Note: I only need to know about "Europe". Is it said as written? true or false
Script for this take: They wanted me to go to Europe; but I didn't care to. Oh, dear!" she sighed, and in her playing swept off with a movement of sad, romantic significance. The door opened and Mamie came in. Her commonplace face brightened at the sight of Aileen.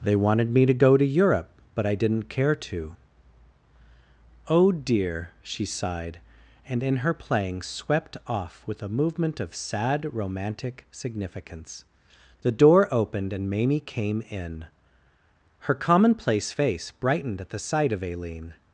true